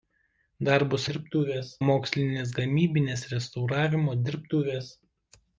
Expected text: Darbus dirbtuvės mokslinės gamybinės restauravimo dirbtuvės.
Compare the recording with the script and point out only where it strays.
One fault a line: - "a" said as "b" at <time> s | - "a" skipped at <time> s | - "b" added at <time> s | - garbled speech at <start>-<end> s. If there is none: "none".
none